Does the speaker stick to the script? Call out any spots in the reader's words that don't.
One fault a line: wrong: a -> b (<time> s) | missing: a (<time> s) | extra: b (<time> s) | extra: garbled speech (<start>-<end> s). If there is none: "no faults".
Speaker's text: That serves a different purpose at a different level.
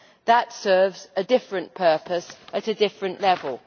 no faults